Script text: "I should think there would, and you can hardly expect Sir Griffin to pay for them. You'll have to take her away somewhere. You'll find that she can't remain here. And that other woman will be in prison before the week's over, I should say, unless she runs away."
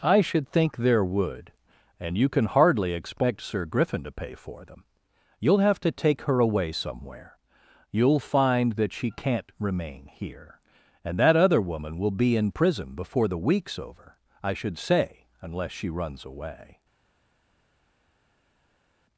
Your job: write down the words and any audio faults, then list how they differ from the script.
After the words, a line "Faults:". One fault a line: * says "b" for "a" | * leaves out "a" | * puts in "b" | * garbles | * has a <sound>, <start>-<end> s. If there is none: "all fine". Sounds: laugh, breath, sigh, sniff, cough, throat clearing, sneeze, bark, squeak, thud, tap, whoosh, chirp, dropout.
"I should think there would, and you can hardly expect Sir Griffin to pay for them. You'll have to take her away somewhere. You'll find that she can't remain here. And that other woman will be in prison before the week's over, I should say, unless she runs away."
Faults:
all fine